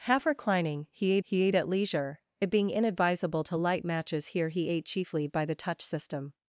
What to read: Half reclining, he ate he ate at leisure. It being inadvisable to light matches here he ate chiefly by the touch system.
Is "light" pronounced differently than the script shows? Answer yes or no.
no